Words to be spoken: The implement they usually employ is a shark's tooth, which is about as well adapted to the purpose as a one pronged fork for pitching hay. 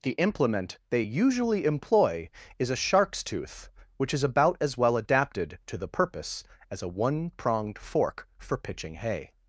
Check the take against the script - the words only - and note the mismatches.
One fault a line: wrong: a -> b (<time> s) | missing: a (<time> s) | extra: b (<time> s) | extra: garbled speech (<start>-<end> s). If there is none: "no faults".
no faults